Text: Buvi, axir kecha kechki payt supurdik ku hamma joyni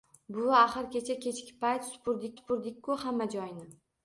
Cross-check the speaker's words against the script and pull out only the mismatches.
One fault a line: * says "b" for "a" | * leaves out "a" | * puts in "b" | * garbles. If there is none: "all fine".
* puts in "supurdik"